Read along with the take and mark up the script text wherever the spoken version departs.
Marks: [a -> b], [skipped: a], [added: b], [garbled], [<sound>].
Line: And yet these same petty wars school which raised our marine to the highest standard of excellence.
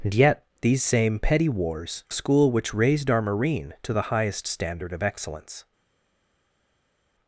And yet these same petty wars school which raised our marine to the highest standard of excellence.